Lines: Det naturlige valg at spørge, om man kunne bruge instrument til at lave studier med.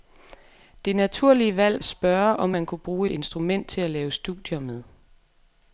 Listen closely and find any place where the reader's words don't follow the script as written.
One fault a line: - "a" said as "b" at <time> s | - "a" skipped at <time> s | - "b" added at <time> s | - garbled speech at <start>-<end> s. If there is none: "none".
none